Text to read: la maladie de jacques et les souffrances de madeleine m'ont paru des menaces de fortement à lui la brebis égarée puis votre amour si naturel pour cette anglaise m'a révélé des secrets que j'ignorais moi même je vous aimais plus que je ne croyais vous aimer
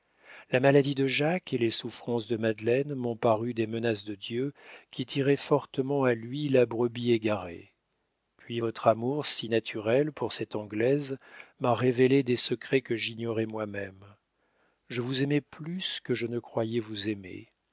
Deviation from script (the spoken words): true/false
true